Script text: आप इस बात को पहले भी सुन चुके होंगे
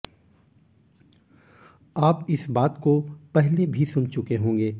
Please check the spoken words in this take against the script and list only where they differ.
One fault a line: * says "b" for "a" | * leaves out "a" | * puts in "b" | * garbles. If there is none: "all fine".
all fine